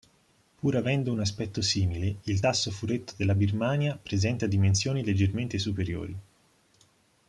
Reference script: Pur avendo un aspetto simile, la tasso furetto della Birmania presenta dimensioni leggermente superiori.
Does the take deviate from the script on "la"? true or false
true